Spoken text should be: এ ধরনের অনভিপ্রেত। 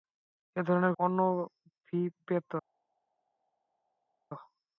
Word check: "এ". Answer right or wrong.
right